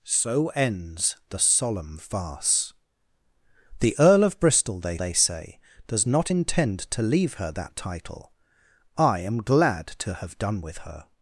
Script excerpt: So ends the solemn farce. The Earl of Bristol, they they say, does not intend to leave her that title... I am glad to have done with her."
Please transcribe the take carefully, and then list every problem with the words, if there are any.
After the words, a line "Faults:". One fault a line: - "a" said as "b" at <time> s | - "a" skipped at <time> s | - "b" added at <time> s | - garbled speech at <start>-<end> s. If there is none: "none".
So ends the solemn farce. The Earl of Bristol, they they say, does not intend to leave her that title... I am glad to have done with her."
Faults:
none